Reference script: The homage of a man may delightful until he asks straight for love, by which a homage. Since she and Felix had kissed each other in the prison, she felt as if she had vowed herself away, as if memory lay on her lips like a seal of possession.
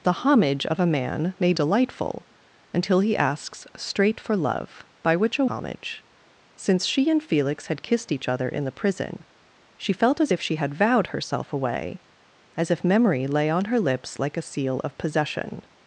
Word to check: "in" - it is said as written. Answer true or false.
true